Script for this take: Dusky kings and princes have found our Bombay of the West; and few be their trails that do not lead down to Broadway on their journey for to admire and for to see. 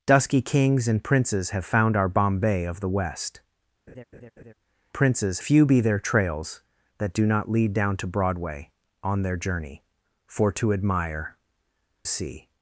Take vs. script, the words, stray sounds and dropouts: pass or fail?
fail